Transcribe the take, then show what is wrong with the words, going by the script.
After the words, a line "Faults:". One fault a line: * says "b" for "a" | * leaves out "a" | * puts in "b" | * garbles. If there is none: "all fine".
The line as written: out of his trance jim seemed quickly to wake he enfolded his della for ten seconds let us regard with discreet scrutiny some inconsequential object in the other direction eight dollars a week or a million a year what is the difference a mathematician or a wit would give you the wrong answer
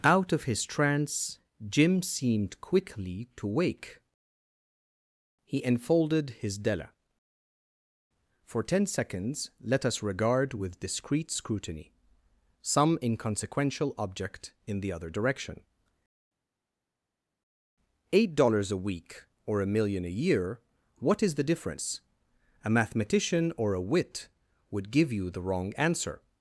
out of his trance jim seemed quickly to wake he enfolded his della for ten seconds let us regard with discreet scrutiny some inconsequential object in the other direction eight dollars a week or a million a year what is the difference a mathematician or a wit would give you the wrong answer
Faults:
all fine